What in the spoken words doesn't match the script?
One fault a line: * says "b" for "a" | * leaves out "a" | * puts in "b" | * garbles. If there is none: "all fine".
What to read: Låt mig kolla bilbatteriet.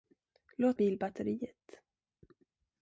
* leaves out "mig kolla"